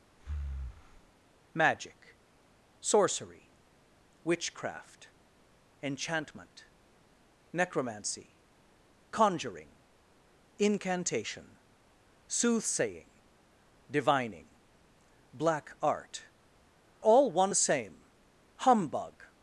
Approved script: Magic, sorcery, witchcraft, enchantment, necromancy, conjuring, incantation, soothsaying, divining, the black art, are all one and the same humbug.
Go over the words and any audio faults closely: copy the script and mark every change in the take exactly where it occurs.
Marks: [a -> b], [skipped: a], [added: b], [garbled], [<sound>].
[breath] Magic, sorcery, witchcraft, enchantment, necromancy, conjuring, incantation, soothsaying, divining, [skipped: the] black art, [skipped: are] all one [skipped: and] the same humbug.